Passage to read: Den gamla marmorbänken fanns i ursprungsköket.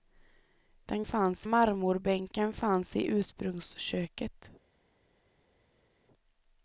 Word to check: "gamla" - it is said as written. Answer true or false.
false